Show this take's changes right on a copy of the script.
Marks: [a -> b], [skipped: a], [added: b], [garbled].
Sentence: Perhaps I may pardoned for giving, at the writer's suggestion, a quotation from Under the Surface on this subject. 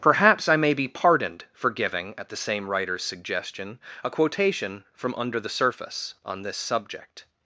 Perhaps I may [added: be] pardoned for giving, at the [added: same] writer's suggestion, a quotation from Under the Surface on this subject.